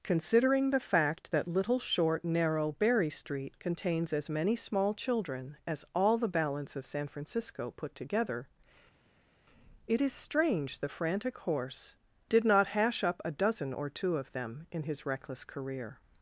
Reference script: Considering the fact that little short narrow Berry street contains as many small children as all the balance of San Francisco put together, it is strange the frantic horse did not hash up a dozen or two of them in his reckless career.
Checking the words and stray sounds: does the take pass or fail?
pass